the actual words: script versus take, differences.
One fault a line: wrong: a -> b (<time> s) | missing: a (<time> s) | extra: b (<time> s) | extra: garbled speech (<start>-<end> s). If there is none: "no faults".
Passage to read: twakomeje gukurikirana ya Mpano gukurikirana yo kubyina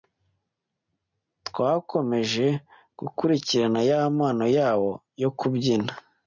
wrong: gukurikirana -> yabo (4.6 s)